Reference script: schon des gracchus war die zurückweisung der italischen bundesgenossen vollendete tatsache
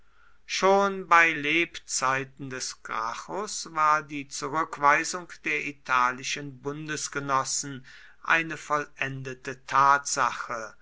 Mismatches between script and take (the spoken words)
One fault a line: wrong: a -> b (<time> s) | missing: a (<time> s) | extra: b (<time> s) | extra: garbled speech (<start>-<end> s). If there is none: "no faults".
extra: bei lebzeiten (1.1 s)
extra: eine (8.2 s)